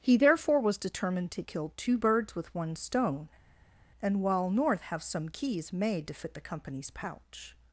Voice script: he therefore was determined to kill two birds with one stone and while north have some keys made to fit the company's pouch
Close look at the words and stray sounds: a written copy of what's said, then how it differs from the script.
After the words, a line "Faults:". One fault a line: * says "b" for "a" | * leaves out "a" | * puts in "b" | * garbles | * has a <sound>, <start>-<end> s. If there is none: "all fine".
he therefore was determined to kill two birds with one stone and while north have some keys made to fit the company's pouch
Faults:
all fine